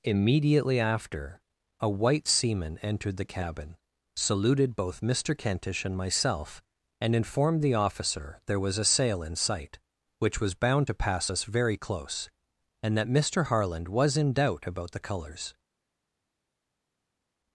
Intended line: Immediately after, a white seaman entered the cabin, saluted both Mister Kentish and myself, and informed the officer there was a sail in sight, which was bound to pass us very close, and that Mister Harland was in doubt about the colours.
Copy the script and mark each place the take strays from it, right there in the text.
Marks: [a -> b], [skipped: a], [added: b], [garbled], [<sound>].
Immediately after, a white seaman entered the cabin, saluted both Mister Kentish and myself, and informed the officer there was a sail in sight, which was bound to pass us very close, and that Mister Harland was in doubt about the colours.